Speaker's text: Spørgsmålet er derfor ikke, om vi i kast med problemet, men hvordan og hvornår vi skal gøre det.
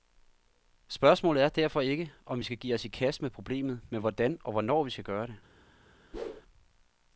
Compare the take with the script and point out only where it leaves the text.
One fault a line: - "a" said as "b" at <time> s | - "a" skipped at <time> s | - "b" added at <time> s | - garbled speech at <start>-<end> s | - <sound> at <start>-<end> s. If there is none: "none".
- "skal give os" added at 2.4 s
- whoosh at 6.1-6.4 s